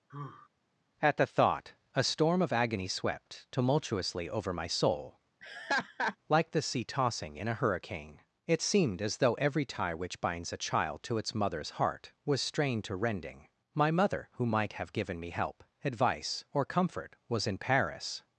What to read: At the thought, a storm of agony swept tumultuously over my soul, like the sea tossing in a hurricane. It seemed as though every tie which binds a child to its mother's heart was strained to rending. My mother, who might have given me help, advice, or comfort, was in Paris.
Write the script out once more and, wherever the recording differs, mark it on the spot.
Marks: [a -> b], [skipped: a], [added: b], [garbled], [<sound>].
[sigh] At the thought, a storm of agony swept tumultuously over my soul, [laugh] like the sea tossing in a hurricane. It seemed as though every tie which binds a child to its mother's heart was strained to rending. My mother, who might have given me help, advice, or comfort, was in Paris.